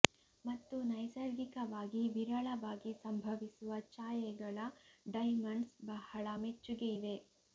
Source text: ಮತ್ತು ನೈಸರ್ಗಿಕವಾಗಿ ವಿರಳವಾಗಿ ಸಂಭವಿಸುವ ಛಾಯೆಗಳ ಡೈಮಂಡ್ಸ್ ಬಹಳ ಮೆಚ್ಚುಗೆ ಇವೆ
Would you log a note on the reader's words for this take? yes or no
no